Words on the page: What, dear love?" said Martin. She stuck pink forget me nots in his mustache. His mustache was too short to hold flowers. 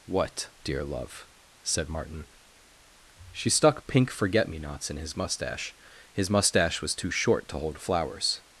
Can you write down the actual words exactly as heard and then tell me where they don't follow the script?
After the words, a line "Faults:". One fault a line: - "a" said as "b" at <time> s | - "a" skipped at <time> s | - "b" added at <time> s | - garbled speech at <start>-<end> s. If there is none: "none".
What, dear love?" said Martin. She stuck pink forget me nots in his mustache. His mustache was too short to hold flowers.
Faults:
none